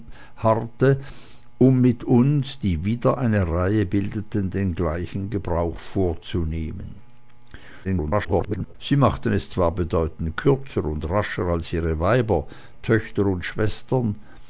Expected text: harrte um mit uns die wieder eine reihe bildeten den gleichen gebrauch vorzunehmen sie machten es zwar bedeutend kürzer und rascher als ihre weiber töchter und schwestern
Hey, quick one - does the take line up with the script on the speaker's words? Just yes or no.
no